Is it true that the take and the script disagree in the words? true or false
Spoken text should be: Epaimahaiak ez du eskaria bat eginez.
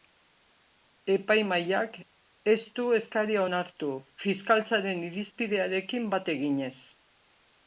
true